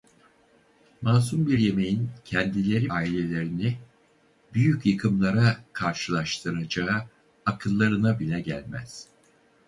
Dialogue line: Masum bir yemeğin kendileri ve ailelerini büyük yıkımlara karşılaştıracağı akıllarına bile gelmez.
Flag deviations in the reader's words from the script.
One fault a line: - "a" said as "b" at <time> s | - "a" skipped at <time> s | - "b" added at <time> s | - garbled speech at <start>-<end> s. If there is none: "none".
- "ve" skipped at 2.9 s